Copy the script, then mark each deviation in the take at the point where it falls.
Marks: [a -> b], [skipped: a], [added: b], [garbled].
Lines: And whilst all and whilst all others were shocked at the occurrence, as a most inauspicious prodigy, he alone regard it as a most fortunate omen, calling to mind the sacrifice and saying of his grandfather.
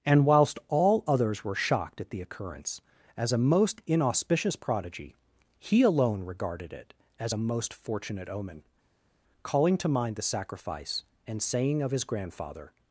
And whilst all [skipped: and whilst all] others were shocked at the occurrence, as a most inauspicious prodigy, he alone [regard -> regarded] it as a most fortunate omen, calling to mind the sacrifice and saying of his grandfather.